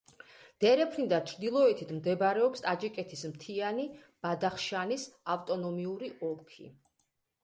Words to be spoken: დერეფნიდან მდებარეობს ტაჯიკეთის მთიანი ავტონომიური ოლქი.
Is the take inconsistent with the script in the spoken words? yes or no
yes